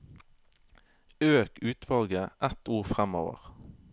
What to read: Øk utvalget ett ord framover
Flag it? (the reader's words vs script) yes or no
no